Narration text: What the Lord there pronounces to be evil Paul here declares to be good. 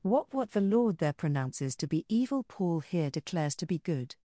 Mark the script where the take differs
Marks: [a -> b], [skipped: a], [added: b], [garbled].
What [added: what] the Lord there pronounces to be evil Paul here declares to be good.